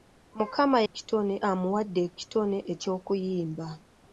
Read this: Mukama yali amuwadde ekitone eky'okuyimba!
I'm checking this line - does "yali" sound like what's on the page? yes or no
no